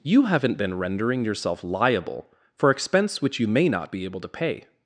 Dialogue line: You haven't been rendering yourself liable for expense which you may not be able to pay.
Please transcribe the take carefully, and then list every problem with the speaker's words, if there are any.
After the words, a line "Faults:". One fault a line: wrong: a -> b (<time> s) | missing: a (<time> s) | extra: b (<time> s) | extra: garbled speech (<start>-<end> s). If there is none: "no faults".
You haven't been rendering yourself liable for expense which you may not be able to pay.
Faults:
no faults